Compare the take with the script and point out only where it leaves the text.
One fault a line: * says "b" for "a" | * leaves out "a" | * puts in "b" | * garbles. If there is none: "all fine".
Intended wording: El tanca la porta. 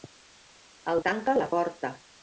all fine